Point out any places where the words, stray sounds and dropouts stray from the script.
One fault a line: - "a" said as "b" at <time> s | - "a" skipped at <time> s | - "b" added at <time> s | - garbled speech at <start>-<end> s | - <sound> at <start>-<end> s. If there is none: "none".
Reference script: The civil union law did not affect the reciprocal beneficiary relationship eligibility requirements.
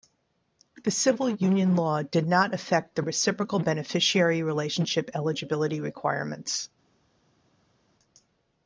none